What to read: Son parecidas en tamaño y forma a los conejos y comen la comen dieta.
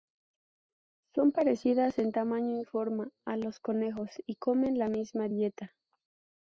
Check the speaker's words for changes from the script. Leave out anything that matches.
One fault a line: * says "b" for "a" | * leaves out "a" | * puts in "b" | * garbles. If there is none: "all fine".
* says "misma" for "comen"